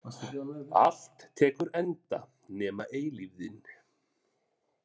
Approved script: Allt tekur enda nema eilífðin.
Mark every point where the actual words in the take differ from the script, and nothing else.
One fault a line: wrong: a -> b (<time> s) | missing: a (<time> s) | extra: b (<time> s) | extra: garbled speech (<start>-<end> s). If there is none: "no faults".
no faults